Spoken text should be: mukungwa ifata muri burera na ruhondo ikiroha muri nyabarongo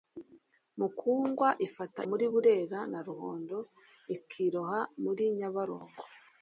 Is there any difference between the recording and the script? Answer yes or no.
no